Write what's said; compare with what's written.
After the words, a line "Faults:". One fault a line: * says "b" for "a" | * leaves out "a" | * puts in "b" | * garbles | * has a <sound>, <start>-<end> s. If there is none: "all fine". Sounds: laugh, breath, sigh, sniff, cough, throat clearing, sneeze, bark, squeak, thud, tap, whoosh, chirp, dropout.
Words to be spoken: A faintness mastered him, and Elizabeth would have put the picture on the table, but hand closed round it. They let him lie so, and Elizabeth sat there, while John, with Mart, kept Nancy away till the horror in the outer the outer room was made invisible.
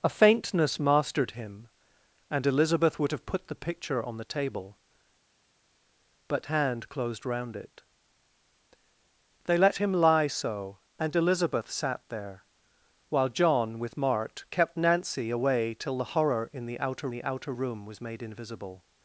A faintness mastered him, and Elizabeth would have put the picture on the table, but hand closed round it. They let him lie so, and Elizabeth sat there, while John, with Mart, kept Nancy away till the horror in the outer the outer room was made invisible.
Faults:
all fine